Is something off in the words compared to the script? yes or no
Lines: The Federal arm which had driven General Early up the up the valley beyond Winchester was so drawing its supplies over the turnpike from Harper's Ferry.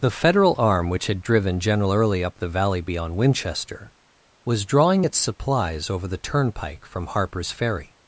yes